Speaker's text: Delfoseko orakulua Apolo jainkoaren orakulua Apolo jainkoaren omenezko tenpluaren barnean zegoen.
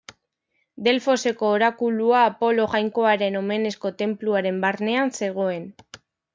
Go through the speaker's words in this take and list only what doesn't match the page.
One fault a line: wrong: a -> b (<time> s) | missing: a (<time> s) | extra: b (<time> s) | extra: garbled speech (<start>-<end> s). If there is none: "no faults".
missing: orakulua Apolo jainkoaren (3.4 s)